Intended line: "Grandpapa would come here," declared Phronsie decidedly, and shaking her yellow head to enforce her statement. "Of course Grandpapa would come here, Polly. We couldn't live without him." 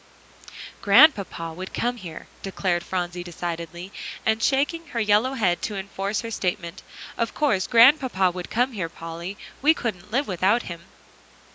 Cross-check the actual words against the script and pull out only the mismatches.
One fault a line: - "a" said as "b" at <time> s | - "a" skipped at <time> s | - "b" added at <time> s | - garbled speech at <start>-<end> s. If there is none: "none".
none